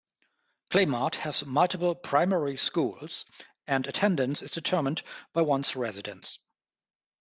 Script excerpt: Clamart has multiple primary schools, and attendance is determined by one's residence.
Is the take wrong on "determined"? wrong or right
right